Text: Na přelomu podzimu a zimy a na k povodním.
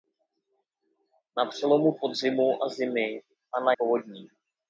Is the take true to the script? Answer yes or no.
yes